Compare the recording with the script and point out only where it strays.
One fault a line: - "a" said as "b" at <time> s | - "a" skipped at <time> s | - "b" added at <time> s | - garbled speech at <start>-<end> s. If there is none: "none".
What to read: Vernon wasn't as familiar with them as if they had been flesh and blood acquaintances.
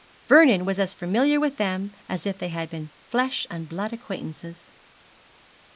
- "wasn't" said as "was" at 0.7 s